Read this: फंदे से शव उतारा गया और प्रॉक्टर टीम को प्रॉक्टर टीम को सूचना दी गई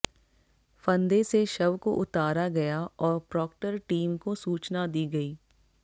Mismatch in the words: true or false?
true